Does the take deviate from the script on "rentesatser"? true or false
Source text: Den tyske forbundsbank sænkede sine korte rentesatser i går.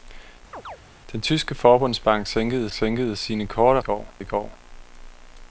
true